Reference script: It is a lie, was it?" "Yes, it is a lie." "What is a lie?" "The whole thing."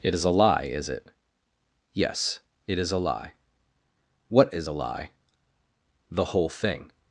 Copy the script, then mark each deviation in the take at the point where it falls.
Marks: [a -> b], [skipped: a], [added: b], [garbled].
It is a lie, [was -> is] it?" "Yes, it is a lie." "What is a lie?" "The whole thing."